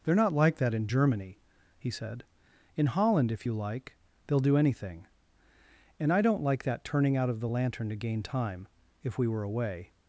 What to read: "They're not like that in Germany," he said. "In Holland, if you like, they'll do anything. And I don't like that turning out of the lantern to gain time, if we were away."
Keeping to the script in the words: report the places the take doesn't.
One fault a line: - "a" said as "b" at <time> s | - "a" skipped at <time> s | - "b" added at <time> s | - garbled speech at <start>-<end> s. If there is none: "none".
none